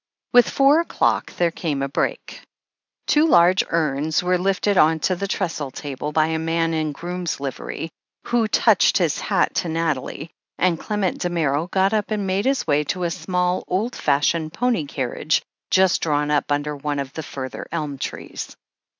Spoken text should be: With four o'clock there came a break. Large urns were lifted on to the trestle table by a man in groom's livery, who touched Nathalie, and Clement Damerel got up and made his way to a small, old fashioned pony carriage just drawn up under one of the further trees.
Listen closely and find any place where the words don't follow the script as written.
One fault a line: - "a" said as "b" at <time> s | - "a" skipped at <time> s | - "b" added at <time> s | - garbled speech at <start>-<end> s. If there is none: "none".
- "Two" added at 3.0 s
- "his hat to" added at 9.0 s
- "elm" added at 17.7 s